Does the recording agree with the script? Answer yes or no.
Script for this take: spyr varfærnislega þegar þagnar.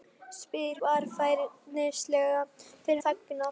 yes